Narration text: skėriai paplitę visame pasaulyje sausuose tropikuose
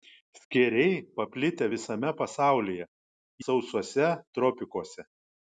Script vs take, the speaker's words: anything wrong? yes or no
no